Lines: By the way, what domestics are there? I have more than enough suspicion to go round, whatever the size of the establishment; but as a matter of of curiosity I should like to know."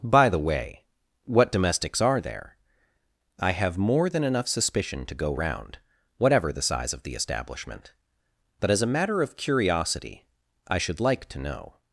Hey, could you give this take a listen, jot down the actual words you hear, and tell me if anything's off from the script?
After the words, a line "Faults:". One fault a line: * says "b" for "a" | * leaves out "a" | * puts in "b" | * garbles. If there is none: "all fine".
By the way, what domestics are there? I have more than enough suspicion to go round, whatever the size of the establishment; but as a matter of curiosity I should like to know."
Faults:
* leaves out "of"